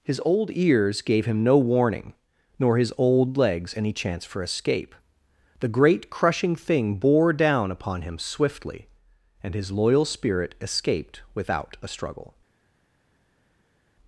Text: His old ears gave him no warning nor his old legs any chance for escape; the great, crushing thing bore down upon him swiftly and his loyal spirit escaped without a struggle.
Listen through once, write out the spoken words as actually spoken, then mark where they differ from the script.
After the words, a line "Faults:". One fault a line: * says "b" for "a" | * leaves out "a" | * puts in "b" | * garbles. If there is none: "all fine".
His old ears gave him no warning nor his old legs any chance for escape; the great, crushing thing bore down upon him swiftly and his loyal spirit escaped without a struggle.
Faults:
all fine